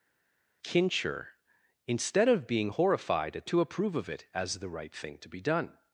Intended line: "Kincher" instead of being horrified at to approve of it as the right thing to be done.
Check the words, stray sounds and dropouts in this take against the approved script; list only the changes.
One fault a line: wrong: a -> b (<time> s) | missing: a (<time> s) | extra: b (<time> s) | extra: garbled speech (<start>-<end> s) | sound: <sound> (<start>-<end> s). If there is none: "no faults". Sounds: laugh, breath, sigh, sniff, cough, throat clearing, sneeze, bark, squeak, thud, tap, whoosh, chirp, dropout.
no faults